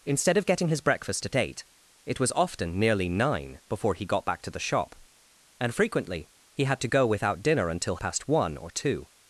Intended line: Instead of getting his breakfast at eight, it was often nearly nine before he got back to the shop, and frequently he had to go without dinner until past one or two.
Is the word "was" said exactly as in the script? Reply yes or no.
yes